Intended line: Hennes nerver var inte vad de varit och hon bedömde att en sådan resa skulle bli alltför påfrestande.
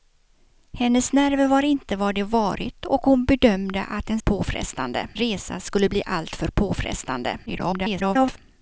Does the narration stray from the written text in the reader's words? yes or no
yes